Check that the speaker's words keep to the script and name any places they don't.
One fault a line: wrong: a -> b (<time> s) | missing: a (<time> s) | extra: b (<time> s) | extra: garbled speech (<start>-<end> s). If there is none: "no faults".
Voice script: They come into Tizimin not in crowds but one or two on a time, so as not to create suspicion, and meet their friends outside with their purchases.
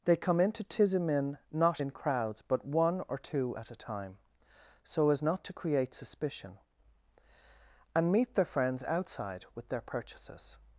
wrong: on -> at (3.5 s)